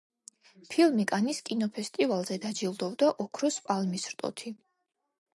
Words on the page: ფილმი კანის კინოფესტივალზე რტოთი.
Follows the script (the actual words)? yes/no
no